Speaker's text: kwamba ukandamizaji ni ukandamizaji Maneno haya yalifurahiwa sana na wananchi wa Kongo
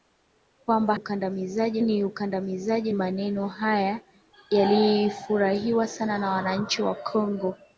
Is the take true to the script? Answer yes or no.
yes